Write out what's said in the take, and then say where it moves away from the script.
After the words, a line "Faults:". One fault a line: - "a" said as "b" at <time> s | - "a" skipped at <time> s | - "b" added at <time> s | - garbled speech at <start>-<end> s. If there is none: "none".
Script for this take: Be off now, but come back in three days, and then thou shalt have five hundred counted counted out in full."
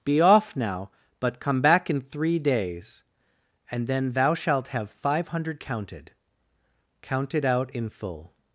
Be off now, but come back in three days, and then thou shalt have five hundred counted counted out in full."
Faults:
none